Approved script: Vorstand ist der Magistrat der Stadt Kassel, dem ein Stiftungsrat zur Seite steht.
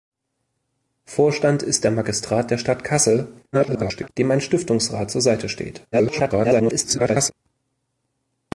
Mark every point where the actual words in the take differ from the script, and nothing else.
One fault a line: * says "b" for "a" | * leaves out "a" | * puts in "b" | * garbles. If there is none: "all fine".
* garbles
* garbles